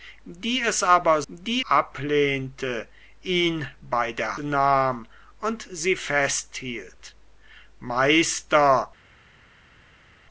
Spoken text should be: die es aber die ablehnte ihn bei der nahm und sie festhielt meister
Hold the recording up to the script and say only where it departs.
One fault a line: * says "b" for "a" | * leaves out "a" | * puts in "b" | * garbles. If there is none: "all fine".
all fine